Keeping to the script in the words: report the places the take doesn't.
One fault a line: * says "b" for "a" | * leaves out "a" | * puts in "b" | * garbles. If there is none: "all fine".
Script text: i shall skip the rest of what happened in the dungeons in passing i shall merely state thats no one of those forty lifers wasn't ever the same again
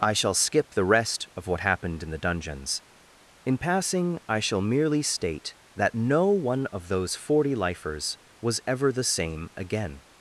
* says "that" for "thats"
* says "was" for "wasn't"